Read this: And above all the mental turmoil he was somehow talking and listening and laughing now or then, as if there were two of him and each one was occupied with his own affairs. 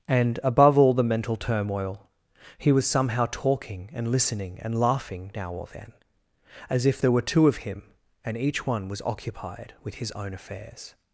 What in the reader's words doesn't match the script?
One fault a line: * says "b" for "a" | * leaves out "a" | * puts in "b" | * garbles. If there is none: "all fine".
all fine